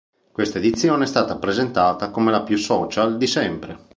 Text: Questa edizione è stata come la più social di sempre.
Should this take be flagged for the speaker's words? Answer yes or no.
yes